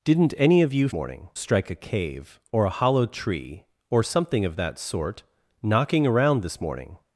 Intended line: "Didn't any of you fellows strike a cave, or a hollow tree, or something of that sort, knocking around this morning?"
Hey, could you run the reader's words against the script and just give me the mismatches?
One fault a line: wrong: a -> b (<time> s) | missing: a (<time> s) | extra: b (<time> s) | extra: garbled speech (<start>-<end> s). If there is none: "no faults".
wrong: fellows -> morning (0.9 s)